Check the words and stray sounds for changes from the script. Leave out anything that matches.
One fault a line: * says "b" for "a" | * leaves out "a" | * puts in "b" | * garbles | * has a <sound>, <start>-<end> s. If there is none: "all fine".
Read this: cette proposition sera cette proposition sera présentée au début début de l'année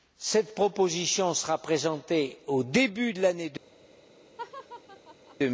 * leaves out "cette proposition sera"
* leaves out "début"
* has a laugh, 4.4-5.4 s